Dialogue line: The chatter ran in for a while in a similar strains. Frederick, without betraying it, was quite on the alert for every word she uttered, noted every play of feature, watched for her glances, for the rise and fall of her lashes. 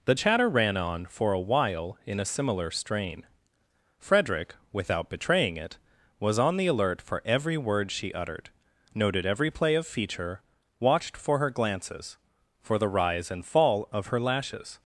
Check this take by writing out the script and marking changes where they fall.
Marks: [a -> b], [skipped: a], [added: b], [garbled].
The chatter ran [in -> on] for a while in a similar [strains. -> strain] Frederick, without betraying it, was [skipped: quite] on the alert for every word she uttered, noted every play of feature, watched for her glances, for the rise and fall of her lashes.